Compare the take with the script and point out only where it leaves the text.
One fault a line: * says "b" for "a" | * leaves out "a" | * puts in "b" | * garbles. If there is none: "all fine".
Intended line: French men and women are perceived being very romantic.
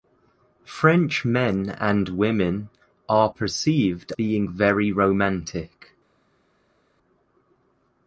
all fine